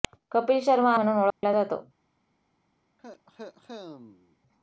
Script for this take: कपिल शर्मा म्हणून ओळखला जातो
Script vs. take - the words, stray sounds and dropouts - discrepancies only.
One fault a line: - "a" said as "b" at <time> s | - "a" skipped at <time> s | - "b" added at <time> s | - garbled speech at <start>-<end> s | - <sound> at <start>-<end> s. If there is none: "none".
- dropout at 1.3-1.4 s
- cough at 3.0-4.4 s